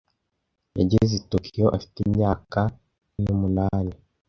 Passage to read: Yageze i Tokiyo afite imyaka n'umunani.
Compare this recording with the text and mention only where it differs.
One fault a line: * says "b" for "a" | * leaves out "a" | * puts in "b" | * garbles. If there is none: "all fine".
all fine